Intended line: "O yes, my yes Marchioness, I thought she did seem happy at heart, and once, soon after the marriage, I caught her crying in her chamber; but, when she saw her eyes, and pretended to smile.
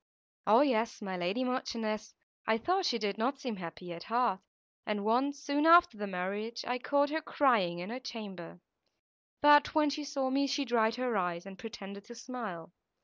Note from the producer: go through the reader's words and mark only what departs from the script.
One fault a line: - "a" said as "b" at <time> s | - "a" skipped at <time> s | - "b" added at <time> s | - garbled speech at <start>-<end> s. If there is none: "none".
- "yes" said as "lady" at 1.1 s
- "not" added at 3.2 s
- "me she dried" added at 10.3 s